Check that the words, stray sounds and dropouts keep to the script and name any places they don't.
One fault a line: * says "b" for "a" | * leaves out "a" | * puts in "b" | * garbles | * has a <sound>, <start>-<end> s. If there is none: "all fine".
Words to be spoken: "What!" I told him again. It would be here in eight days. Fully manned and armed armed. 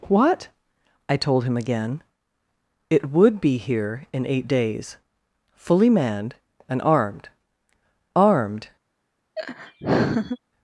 * has a laugh, 9.4-10.4 s